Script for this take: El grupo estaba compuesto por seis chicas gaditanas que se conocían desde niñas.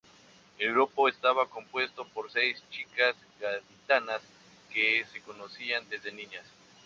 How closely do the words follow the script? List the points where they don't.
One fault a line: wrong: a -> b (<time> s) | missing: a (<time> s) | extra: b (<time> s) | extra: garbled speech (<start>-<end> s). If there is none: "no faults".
no faults